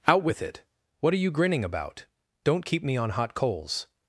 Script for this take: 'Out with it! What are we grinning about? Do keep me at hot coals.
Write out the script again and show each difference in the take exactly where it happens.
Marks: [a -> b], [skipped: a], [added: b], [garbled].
'Out with it! What are [we -> you] grinning about? [Do -> Don't] keep me [at -> on] hot coals.